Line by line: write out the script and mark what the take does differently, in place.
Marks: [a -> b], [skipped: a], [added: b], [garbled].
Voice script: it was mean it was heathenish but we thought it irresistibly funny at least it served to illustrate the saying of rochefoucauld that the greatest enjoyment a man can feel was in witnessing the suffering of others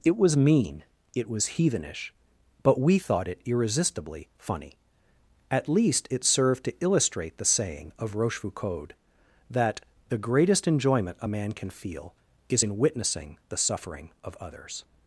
it was mean it was heathenish but we thought it irresistibly funny at least it served to illustrate the saying of rochefoucauld that the greatest enjoyment a man can feel [was -> is] in witnessing the suffering of others